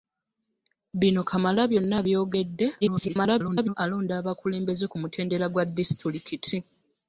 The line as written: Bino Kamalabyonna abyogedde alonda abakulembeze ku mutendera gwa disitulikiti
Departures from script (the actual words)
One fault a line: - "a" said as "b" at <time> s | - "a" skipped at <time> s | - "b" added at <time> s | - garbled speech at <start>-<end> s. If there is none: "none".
- garbled speech at 2.8-3.7 s